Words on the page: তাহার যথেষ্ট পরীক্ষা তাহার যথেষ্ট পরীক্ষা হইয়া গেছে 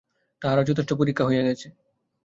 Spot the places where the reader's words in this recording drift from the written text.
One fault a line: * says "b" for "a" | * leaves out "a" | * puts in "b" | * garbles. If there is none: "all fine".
* leaves out "তাহার যথেষ্ট পরীক্ষা"